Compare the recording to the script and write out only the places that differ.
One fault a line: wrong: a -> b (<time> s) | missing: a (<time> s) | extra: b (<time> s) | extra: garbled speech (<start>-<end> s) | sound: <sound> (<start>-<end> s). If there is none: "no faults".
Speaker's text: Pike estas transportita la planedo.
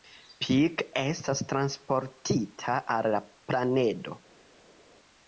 extra: al (3.0 s)